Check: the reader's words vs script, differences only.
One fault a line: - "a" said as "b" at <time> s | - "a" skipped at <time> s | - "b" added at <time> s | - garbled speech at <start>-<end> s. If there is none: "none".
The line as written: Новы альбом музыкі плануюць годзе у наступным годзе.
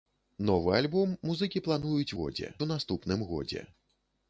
none